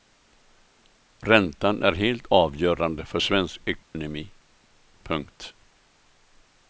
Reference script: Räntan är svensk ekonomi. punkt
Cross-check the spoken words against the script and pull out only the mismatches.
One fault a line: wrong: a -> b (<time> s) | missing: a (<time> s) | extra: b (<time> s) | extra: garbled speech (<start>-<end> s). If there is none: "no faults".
extra: helt avgörande för (1.9 s)